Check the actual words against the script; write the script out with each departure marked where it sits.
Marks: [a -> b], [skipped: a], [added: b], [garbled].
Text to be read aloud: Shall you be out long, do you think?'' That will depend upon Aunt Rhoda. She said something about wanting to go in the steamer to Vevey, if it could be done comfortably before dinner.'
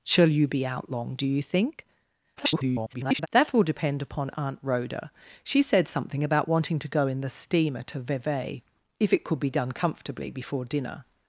Shall you be out long, do you think?'' [garbled] That will depend upon Aunt Rhoda. She said something about wanting to go in the steamer to Vevey, if it could be done comfortably before dinner.'